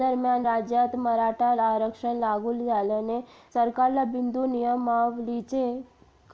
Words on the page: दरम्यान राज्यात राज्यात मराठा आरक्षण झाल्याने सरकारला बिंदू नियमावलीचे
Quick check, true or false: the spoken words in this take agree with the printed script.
false